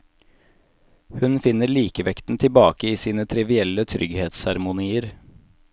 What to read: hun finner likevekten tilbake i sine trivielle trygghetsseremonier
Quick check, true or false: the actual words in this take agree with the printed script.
true